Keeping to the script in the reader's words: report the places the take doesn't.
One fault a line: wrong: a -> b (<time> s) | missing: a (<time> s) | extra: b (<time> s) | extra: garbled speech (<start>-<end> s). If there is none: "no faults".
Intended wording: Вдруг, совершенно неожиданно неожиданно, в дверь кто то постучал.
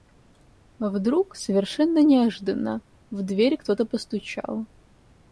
missing: неожиданно (2.8 s)